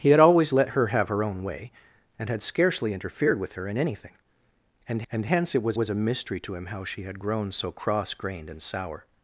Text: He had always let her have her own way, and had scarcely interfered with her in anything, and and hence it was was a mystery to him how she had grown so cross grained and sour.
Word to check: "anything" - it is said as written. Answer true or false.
true